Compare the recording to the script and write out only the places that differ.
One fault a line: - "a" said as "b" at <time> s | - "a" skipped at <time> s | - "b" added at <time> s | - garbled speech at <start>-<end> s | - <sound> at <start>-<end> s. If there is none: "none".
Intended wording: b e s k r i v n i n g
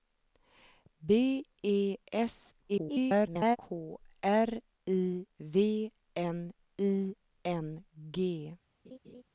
- garbled speech at 2.7-3.6 s
- laugh at 8.8-9.2 s